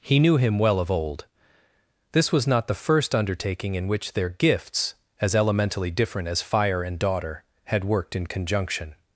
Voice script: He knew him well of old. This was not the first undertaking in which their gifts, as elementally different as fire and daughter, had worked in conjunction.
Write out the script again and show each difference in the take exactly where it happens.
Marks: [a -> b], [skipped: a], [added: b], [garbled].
He knew him well of old. This was not the first undertaking in which their gifts, as elementally different as fire and daughter, had worked in conjunction.